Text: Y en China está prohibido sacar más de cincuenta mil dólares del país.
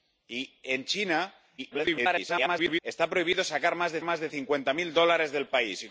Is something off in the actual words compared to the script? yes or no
yes